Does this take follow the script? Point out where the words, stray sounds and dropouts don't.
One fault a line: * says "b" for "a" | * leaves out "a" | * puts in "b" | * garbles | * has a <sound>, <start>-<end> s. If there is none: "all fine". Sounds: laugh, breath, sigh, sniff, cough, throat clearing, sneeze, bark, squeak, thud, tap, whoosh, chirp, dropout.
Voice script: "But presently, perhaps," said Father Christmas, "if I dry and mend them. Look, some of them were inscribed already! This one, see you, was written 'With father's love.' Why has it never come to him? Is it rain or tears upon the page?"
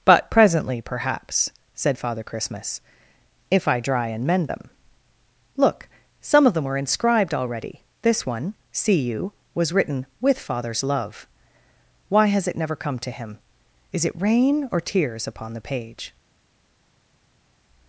all fine